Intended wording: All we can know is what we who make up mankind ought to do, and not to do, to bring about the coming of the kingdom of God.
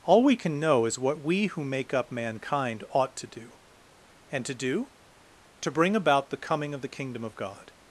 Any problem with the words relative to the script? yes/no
yes